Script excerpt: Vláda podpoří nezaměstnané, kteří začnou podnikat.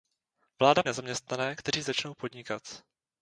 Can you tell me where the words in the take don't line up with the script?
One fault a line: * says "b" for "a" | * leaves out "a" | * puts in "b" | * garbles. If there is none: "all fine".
* leaves out "podpoří"